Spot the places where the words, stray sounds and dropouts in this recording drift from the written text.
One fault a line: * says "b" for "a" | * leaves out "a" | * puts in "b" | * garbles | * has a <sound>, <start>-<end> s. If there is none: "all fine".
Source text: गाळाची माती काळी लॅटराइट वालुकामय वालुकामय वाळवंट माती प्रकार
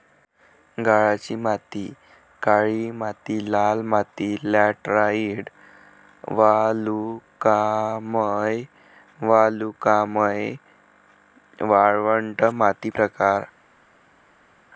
* puts in "माती लाल माती"